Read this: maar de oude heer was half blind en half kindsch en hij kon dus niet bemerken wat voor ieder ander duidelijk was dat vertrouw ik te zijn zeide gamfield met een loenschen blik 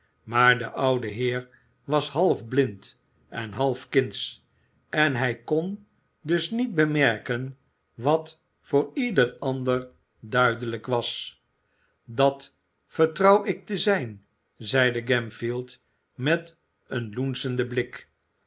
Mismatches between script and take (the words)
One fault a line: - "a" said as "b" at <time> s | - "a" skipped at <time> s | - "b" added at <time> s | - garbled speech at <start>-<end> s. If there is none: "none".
none